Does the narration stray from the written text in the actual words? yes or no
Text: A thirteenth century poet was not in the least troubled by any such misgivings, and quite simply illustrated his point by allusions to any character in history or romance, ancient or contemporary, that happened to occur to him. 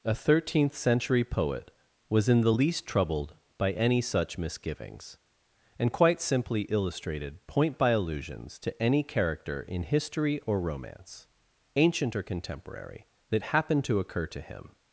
yes